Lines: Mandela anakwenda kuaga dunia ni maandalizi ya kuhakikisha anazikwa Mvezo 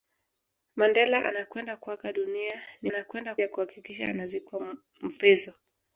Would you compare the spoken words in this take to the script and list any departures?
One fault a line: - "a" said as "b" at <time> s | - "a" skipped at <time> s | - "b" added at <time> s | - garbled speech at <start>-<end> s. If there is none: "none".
- "maandalizi" said as "anakwenda" at 2.9 s